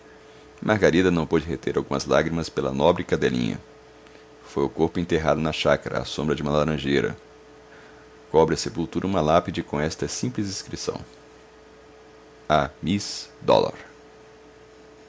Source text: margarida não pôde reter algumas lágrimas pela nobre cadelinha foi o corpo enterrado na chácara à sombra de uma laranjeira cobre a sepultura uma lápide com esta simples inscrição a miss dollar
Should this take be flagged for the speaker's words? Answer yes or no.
no